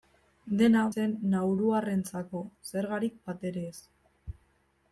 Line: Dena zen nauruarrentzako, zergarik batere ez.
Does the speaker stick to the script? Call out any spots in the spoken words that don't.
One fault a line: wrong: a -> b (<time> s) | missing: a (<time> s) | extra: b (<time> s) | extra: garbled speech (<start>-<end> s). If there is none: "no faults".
no faults